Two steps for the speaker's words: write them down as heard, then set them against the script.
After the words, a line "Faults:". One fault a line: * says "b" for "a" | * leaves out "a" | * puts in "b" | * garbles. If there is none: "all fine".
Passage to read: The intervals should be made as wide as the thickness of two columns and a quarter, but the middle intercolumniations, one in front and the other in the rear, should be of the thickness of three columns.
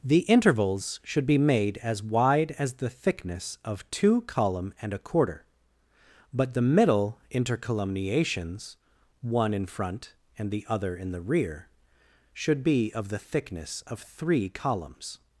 The intervals should be made as wide as the thickness of two column and a quarter, but the middle intercolumniations, one in front and the other in the rear, should be of the thickness of three columns.
Faults:
* says "column" for "columns"